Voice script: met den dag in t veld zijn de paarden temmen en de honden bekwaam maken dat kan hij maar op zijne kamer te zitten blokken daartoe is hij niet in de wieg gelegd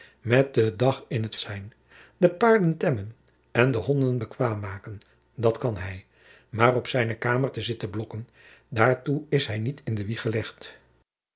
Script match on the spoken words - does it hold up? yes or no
no